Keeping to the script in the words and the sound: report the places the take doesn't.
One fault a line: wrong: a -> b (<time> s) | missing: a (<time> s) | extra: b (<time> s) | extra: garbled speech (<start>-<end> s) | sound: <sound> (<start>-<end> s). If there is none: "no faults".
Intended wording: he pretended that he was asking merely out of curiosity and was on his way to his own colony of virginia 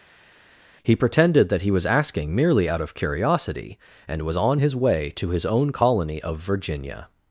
no faults